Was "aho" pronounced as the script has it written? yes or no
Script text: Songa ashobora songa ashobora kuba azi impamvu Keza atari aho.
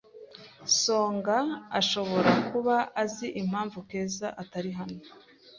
no